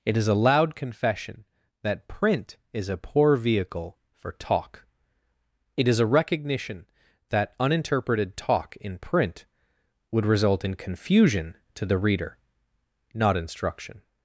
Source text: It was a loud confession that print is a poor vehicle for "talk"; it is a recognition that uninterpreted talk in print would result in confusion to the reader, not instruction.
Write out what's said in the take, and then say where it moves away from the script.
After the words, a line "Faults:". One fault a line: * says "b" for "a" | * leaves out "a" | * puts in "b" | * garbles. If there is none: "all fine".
It is a loud confession that print is a poor vehicle for "talk"; it is a recognition that uninterpreted talk in print would result in confusion to the reader, not instruction.
Faults:
* says "is" for "was"